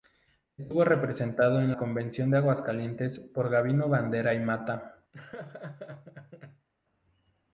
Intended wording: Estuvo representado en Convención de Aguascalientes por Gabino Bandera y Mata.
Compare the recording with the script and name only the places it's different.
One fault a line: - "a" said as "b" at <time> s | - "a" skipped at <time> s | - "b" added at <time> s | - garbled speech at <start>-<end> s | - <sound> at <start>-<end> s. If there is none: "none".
- laugh at 5.1-6.7 s